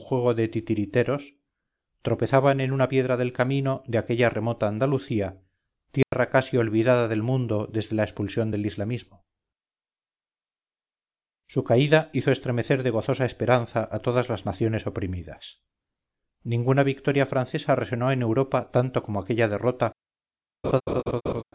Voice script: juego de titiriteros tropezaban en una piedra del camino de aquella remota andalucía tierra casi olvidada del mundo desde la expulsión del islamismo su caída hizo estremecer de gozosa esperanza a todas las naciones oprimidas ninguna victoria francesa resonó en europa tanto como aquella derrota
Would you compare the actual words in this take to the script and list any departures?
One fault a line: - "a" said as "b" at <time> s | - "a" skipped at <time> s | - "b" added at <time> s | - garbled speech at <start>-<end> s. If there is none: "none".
none